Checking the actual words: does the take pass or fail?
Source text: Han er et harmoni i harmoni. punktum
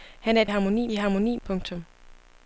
pass